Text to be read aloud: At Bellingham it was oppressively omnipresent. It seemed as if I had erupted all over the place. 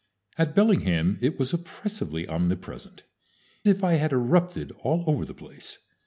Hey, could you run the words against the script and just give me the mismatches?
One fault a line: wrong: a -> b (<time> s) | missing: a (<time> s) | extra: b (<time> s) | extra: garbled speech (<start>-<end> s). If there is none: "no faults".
missing: It seemed as (3.0 s)